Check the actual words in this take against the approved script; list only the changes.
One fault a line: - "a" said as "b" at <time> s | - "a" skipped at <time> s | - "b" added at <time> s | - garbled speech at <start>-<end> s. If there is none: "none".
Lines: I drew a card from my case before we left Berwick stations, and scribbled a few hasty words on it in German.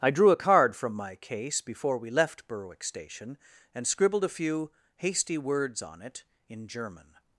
- "stations" said as "station" at 2.8 s